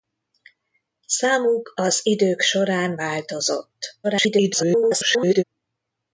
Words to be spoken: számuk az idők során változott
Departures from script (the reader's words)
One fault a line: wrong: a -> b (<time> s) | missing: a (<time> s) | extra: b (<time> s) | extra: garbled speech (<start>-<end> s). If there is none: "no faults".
extra: garbled speech (4.0-5.4 s)